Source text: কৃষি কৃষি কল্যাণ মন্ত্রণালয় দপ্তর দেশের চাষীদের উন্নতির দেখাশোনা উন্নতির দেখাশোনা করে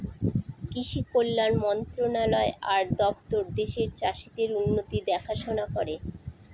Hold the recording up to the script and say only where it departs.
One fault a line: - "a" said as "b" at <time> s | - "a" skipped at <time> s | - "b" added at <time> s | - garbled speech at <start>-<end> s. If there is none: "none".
- "কৃষি" skipped at 1.0 s
- "আর" added at 2.7 s
- "উন্নতির দেখাশোনা" skipped at 5.7 s